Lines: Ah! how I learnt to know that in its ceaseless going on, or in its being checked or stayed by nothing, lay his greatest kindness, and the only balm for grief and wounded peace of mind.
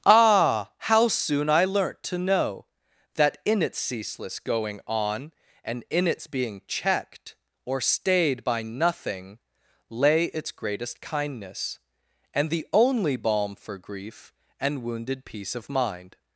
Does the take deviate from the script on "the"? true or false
false